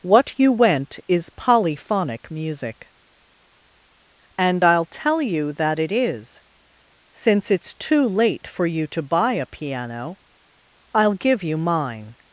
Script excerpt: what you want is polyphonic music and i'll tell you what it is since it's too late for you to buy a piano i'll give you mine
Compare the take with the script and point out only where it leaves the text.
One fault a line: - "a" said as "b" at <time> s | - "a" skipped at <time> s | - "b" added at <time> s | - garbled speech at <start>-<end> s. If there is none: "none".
- "want" said as "went" at 0.5 s
- "what" said as "that" at 5.5 s